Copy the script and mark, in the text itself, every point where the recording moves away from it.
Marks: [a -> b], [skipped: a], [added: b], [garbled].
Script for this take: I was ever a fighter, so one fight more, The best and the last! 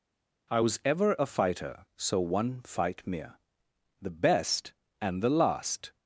I was ever a fighter, so one fight [more, -> mere] The best and the last!